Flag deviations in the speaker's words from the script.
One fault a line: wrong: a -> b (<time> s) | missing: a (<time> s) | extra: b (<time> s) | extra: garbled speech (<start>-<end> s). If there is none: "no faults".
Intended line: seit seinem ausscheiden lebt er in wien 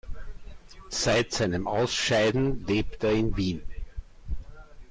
no faults